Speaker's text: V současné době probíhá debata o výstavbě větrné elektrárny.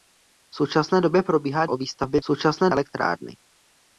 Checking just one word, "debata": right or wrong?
wrong